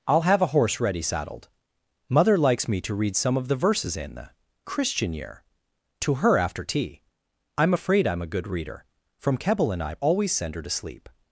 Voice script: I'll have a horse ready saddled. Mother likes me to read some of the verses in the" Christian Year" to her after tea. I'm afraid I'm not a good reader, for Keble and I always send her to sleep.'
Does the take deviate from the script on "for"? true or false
true